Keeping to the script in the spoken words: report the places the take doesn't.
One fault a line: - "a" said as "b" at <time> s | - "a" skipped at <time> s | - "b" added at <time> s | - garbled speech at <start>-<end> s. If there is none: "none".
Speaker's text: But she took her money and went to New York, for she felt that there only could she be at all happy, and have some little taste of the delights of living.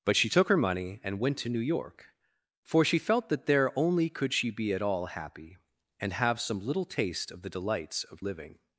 none